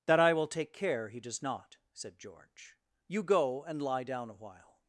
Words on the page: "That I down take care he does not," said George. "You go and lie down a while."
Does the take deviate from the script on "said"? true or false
false